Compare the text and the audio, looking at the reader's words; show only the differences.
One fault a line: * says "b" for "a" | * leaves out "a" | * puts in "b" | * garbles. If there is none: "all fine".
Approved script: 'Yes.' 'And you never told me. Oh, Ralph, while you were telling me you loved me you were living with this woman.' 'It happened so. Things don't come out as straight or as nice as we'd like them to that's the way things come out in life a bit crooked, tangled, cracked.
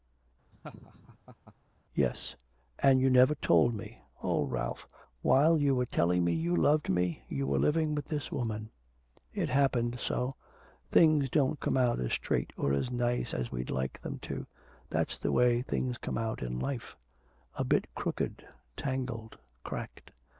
all fine